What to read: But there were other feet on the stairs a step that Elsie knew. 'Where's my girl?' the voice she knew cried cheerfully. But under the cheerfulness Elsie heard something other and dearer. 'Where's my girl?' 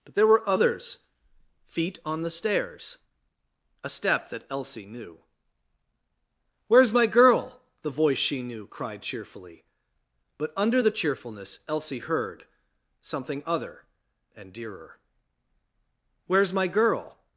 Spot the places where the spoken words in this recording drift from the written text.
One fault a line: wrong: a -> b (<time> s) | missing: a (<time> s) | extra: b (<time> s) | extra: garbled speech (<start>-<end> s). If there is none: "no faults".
wrong: other -> others (0.5 s)